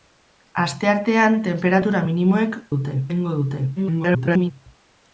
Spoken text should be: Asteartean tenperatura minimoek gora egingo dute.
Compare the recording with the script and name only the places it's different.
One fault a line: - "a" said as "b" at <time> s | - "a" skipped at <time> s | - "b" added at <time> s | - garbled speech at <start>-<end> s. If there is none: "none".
- "gora" said as "dute" at 2.8 s
- garbled speech at 3.8-4.5 s